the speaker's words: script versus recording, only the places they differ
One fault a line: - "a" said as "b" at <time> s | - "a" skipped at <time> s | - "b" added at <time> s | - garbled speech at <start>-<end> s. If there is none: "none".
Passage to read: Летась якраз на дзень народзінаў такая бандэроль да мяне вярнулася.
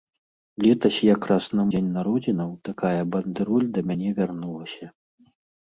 none